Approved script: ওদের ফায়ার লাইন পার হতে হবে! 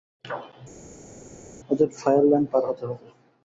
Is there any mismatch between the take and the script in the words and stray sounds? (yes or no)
no